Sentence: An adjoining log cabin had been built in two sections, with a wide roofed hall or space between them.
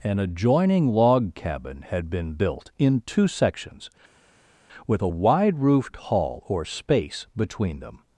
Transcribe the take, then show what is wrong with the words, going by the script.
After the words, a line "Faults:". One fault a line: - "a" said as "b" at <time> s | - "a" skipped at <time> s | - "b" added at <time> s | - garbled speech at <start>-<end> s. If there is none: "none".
An adjoining log cabin had been built in two sections, with a wide roofed hall or space between them.
Faults:
none